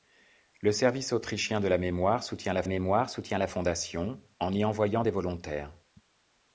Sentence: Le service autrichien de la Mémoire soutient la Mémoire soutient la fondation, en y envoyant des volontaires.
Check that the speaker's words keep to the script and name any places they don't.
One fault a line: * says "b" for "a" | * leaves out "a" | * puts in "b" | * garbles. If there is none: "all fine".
all fine